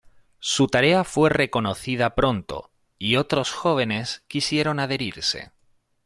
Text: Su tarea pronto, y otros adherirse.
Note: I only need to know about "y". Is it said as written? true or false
true